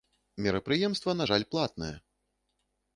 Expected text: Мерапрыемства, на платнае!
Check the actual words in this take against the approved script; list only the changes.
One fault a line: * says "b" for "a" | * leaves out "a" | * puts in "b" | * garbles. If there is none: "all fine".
* puts in "жаль"